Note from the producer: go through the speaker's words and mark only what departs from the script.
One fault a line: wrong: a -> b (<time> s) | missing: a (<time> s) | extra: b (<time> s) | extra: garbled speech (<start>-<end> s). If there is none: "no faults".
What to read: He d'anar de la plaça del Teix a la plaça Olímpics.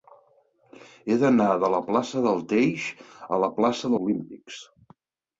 no faults